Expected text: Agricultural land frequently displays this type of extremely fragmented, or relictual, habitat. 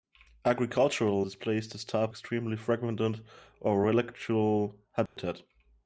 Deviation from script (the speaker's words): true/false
true